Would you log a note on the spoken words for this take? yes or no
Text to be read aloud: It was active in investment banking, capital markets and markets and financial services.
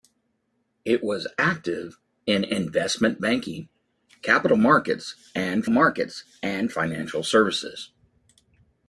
no